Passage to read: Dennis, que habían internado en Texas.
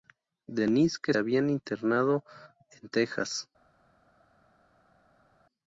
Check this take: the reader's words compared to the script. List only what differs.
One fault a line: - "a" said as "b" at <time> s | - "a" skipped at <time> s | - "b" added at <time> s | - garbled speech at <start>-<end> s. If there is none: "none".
none